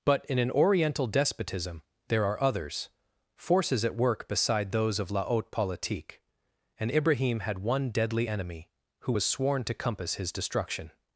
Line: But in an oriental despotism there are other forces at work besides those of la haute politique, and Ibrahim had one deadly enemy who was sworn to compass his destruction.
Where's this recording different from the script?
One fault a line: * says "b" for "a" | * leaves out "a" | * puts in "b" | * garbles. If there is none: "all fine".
* says "others" for "other"
* says "beside" for "besides"